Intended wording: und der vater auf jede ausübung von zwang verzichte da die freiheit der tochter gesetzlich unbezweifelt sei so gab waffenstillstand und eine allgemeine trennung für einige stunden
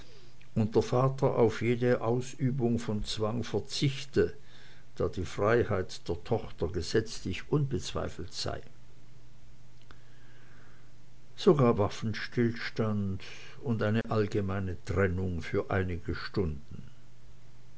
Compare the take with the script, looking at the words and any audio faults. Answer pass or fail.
fail